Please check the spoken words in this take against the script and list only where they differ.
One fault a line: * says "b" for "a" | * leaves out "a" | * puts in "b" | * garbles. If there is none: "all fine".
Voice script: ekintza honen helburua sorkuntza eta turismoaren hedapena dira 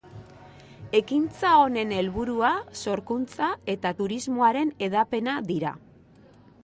all fine